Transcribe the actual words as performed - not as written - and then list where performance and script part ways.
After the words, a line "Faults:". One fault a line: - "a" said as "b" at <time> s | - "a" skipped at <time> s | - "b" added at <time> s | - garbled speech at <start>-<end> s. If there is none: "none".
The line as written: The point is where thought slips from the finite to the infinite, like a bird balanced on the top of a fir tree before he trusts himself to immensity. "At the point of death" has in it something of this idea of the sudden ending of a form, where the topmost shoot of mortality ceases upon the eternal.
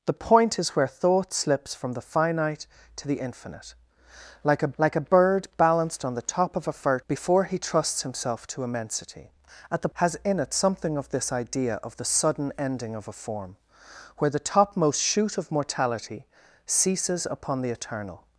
The point is where thought slips from the finite to the infinite, like a like a bird balanced on the top of a fir before he trusts himself to immensity. "At the" has in it something of this idea of the sudden ending of a form, where the topmost shoot of mortality ceases upon the eternal.
Faults:
- "like a" added at 4.8 s
- "tree" skipped at 7.0 s
- "point of death" skipped at 9.9 s